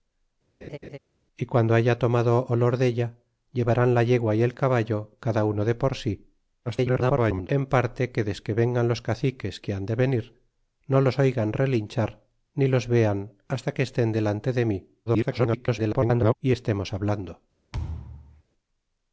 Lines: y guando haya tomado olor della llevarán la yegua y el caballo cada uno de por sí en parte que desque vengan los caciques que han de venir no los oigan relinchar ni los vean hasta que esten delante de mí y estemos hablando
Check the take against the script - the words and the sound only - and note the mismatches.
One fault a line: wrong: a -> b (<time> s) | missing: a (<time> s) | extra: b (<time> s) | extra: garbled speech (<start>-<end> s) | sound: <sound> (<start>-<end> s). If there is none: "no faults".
sound: laugh (0.6-1.0 s)
extra: garbled speech (6.7-7.5 s)
extra: garbled speech (15.1-16.3 s)
sound: thud (17.7-18.4 s)